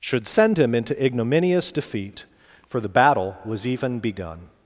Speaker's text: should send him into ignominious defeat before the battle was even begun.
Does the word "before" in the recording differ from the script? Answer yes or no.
yes